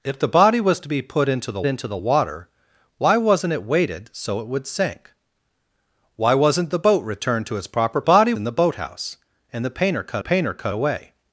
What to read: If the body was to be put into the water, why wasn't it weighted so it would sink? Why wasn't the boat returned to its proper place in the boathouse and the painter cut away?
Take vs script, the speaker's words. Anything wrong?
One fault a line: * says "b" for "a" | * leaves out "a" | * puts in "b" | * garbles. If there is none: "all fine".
* puts in "into the"
* says "body" for "place"
* puts in "painter cut"